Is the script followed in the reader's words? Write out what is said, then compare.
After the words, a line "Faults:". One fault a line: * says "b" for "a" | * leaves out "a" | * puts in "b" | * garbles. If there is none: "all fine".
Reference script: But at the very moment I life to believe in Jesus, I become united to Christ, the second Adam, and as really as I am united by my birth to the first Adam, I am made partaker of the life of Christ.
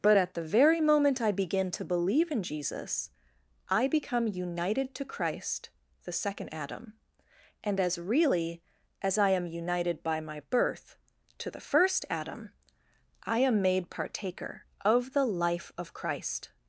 But at the very moment I begin to believe in Jesus, I become united to Christ, the second Adam, and as really as I am united by my birth to the first Adam, I am made partaker of the life of Christ.
Faults:
* says "begin" for "life"